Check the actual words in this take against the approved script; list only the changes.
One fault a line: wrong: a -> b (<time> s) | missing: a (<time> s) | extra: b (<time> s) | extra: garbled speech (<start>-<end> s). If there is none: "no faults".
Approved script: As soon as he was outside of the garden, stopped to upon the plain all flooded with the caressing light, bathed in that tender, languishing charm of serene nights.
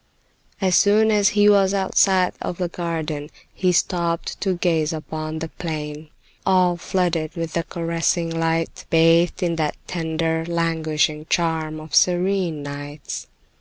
extra: he (3.5 s)
extra: gaze (4.5 s)